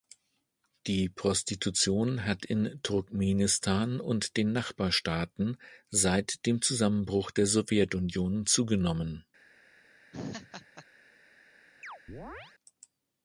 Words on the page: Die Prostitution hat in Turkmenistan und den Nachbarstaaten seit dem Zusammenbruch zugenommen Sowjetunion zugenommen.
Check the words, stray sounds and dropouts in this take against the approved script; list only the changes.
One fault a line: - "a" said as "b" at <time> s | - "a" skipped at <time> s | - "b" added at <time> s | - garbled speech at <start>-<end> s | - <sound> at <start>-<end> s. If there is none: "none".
- "zugenommen" said as "der" at 7.3 s
- laugh at 10.1-10.8 s
- chirp at 11.8-12.6 s